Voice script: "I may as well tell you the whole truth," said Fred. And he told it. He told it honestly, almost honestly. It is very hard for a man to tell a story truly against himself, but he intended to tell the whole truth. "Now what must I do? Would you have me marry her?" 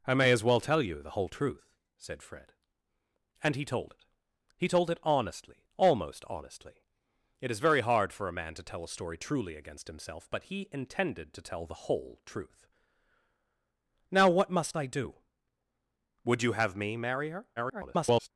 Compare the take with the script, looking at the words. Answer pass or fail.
fail